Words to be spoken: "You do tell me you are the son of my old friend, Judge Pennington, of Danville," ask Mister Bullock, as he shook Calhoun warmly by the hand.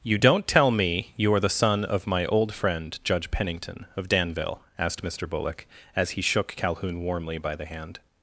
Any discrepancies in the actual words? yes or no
yes